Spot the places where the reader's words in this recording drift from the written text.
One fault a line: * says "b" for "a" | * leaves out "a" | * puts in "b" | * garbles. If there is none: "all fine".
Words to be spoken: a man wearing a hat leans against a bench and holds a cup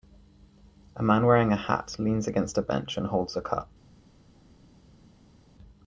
all fine